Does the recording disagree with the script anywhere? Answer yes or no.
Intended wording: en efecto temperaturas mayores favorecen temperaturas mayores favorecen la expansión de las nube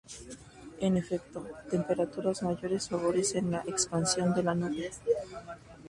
yes